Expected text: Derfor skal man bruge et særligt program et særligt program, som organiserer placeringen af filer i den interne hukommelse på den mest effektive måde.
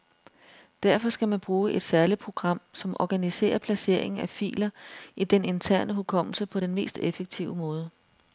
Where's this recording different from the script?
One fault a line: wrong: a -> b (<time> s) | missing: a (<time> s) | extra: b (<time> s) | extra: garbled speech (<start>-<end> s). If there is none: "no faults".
missing: et særligt program (2.6 s)